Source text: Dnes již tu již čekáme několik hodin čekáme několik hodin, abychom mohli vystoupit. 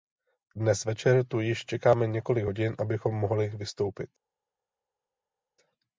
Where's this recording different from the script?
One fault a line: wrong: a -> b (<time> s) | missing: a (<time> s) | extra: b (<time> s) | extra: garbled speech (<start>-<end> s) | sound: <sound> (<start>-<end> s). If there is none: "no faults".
wrong: již -> večer (0.8 s)
missing: čekáme několik hodin (2.7 s)